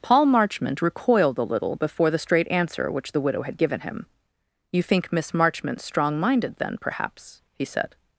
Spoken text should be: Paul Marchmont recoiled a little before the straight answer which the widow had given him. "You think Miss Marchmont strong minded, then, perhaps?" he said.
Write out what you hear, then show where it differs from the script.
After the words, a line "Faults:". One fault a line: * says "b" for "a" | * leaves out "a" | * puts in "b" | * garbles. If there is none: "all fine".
Paul Marchmont recoiled a little before the straight answer which the widow had given him. "You think Miss Marchmont strong minded, then, perhaps?" he said.
Faults:
all fine